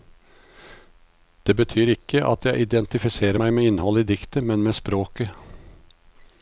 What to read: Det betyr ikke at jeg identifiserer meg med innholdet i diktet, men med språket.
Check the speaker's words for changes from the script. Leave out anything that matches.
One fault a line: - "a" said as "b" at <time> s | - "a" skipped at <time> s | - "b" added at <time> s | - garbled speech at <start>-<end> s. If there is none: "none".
none